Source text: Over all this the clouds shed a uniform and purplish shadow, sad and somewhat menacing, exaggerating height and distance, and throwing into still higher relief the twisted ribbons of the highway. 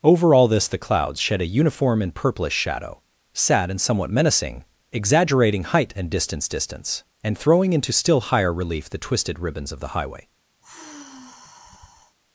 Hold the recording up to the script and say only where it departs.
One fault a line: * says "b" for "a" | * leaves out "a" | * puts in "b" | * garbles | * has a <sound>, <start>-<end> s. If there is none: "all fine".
* puts in "distance"
* has a sigh, 10.6-12.2 s